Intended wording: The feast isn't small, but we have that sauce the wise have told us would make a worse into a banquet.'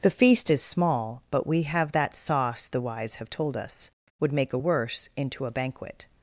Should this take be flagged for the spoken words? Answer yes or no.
yes